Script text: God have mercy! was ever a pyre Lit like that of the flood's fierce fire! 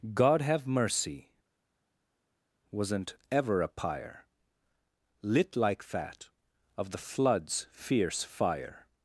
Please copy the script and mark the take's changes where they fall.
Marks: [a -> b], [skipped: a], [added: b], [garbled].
God have mercy! [was -> wasn't] ever a pyre Lit like that of the flood's fierce fire!